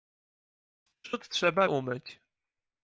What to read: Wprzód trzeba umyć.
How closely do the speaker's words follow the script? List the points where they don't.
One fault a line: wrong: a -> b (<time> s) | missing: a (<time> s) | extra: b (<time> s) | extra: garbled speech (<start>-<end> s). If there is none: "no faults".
no faults